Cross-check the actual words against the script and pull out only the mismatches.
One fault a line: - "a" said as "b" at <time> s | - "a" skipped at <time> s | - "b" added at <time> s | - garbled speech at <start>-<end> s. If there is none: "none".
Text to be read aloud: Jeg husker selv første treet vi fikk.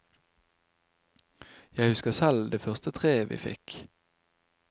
- "det" added at 2.5 s